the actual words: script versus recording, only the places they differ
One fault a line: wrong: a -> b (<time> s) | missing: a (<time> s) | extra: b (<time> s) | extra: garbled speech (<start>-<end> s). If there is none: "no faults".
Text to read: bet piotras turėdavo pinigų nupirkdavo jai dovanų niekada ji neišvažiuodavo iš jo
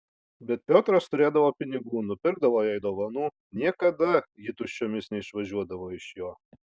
extra: tuščiomis (4.6 s)